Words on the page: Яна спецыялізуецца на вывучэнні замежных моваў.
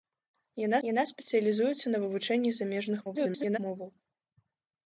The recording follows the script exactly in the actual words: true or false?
false